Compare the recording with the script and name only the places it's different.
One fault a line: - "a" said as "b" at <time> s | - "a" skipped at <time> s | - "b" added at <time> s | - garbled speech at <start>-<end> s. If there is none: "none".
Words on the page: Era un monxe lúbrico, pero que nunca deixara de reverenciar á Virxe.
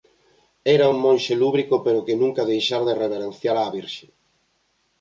none